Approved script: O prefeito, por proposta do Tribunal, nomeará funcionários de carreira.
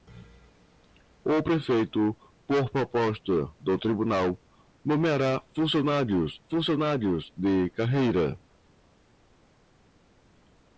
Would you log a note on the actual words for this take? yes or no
yes